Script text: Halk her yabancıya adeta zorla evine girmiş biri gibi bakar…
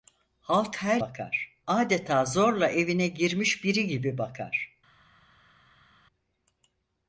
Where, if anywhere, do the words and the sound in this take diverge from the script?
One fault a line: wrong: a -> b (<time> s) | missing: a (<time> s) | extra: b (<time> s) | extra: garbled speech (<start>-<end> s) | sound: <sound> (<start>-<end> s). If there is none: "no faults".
wrong: yabancıya -> bakar (1.0 s)